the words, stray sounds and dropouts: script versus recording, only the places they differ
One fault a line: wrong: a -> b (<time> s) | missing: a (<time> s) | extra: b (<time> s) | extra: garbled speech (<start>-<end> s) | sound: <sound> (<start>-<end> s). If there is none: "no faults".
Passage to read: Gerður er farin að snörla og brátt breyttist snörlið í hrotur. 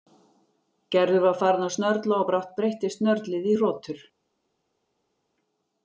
wrong: er -> var (1.2 s)